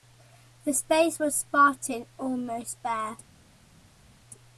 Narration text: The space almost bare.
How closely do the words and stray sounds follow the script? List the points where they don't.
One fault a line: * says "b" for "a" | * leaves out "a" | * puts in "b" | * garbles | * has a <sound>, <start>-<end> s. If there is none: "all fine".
* puts in "was spartan"